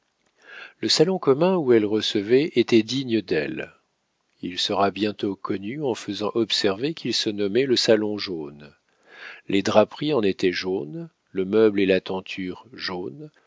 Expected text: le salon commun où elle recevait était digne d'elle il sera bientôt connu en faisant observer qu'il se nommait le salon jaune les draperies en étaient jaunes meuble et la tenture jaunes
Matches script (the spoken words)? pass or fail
fail